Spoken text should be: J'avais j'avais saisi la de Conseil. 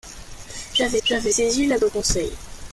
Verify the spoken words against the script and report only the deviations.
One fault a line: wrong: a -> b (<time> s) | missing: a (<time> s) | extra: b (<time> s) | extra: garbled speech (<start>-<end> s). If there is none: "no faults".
no faults